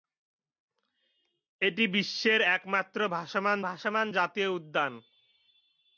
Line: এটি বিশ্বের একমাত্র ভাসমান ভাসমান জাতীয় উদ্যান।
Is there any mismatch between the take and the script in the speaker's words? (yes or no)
no